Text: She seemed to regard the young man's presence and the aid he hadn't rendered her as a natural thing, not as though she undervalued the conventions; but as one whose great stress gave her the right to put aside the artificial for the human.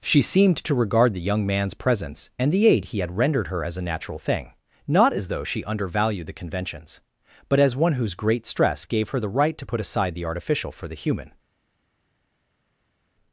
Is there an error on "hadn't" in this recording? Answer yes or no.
yes